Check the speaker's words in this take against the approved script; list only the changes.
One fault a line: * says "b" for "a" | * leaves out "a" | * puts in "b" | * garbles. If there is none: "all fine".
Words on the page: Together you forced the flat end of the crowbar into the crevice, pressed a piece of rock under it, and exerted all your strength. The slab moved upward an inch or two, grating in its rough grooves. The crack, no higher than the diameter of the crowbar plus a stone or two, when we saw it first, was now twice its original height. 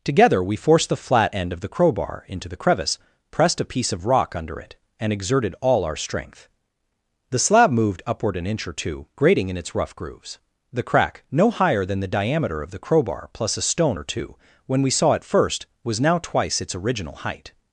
* says "we" for "you"
* says "our" for "your"